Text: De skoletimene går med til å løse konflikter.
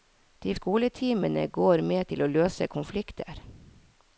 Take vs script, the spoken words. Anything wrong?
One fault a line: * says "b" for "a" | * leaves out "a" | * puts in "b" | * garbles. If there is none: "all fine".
all fine